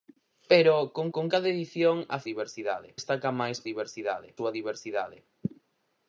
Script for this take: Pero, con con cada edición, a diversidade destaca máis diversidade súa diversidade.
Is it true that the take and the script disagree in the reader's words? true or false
false